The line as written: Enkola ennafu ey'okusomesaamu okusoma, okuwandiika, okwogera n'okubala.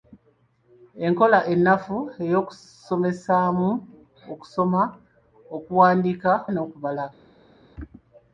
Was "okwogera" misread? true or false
true